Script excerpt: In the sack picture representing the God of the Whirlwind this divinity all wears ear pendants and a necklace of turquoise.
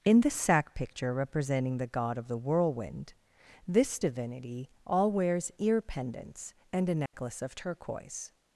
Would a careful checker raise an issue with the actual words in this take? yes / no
no